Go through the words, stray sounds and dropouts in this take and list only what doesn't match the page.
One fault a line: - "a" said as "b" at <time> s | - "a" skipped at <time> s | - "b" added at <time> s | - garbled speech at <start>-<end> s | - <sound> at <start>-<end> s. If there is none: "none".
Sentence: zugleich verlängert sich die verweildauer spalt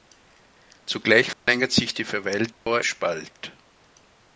- dropout at 1.3-1.5 s
- dropout at 2.5-2.7 s